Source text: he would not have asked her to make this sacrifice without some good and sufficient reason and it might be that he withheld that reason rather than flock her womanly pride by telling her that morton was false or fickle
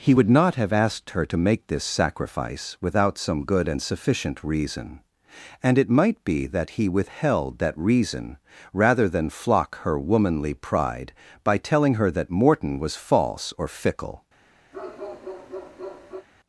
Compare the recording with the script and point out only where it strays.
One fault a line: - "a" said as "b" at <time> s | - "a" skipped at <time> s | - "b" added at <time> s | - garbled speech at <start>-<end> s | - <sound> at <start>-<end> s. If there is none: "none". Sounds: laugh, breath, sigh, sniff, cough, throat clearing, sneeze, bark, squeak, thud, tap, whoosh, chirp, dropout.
- bark at 14.7-16.3 s